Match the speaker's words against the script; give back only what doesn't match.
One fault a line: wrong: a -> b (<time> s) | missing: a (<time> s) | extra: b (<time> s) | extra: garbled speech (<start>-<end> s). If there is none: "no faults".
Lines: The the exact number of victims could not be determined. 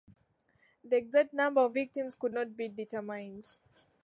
missing: the (1.0 s)